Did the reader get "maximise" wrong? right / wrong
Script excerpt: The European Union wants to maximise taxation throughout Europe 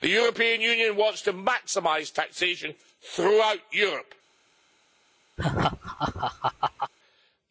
right